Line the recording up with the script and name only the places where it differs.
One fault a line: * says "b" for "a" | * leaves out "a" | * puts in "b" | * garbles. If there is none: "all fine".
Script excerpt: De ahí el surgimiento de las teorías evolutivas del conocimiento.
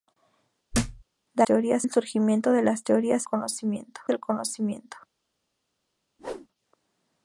* says "teorías" for "ahí"
* says "conocimiento" for "evolutivas"